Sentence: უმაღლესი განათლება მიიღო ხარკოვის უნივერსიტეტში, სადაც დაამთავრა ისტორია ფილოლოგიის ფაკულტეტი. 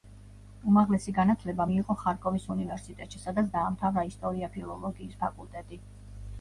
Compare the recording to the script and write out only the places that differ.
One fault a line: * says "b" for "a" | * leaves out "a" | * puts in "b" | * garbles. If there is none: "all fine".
all fine